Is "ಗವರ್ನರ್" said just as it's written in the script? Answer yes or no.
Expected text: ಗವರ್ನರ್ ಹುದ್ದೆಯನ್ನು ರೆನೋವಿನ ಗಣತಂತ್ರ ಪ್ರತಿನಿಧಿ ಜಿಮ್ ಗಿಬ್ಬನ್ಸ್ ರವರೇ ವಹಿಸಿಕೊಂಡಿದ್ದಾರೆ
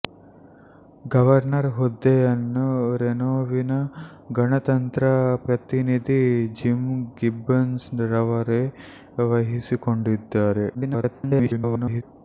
yes